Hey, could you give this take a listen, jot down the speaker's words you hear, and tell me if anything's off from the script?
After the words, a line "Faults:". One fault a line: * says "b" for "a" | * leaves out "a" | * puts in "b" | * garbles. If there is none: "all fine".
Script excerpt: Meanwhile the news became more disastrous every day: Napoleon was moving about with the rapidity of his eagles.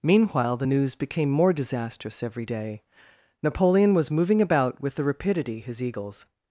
Meanwhile the news became more disastrous every day: Napoleon was moving about with the rapidity his eagles.
Faults:
* leaves out "of"